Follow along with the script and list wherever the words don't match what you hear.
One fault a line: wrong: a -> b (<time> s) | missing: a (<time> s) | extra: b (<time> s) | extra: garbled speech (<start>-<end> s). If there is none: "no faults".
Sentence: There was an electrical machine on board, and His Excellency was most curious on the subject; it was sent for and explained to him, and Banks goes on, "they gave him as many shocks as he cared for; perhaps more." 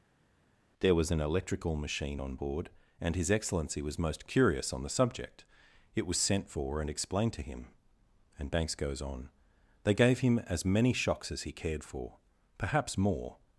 no faults